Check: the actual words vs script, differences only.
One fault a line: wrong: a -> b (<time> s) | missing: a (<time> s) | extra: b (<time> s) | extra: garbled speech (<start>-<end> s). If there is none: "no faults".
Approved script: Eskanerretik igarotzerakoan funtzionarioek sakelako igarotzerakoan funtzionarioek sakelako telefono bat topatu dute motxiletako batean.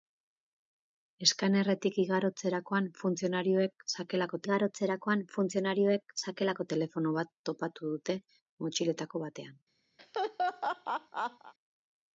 no faults